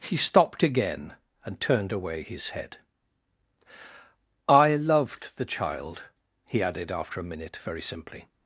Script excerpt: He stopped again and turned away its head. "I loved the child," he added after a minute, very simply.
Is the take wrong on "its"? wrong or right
wrong